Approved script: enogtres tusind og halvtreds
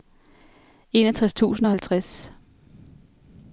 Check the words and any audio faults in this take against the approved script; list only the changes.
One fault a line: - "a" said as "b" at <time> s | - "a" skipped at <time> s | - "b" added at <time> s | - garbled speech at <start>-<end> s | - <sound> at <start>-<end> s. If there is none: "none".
none